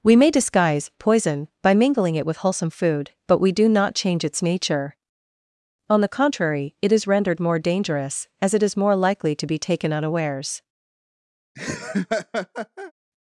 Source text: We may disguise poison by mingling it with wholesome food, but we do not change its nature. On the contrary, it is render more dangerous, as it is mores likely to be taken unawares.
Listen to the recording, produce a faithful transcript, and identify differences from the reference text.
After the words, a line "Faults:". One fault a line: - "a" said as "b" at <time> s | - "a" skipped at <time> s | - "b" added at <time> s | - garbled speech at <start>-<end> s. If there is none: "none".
We may disguise poison by mingling it with wholesome food, but we do not change its nature. On the contrary, it is rendered more dangerous, as it is more likely to be taken unawares.
Faults:
- "render" said as "rendered" at 7.0 s
- "mores" said as "more" at 8.8 s